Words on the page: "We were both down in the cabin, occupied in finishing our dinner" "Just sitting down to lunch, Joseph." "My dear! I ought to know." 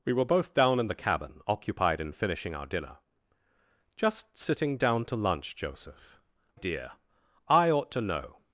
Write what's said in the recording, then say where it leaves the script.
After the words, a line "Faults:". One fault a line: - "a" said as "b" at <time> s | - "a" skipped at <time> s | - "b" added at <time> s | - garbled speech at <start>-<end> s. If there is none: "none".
"We were both down in the cabin, occupied in finishing our dinner" "Just sitting down to lunch, Joseph." "Dear! I ought to know."
Faults:
- "My" skipped at 6.2 s